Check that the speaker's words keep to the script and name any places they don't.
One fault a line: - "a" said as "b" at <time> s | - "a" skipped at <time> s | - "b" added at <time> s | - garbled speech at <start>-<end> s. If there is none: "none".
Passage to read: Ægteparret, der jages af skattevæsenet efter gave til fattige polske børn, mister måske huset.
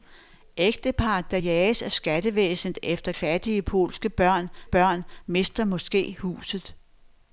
- "gave til" skipped at 3.1 s
- "børn" added at 4.6 s